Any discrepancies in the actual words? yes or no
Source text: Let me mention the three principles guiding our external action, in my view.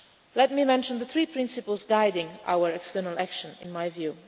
no